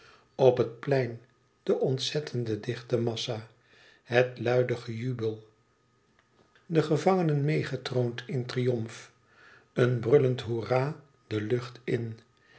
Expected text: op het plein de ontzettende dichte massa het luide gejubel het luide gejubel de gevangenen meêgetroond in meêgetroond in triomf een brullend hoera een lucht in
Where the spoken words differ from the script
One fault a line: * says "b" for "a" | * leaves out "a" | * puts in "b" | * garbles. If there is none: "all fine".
* leaves out "het luide gejubel"
* leaves out "meêgetroond in"
* says "de" for "een"